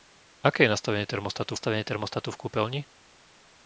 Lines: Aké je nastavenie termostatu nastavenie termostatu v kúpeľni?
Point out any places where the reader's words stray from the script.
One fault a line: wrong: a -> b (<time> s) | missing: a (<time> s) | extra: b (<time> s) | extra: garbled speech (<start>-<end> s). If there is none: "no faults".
no faults